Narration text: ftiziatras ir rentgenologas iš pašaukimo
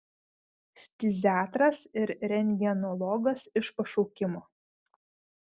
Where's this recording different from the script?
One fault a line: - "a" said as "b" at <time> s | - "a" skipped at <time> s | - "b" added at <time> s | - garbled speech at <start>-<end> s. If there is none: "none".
none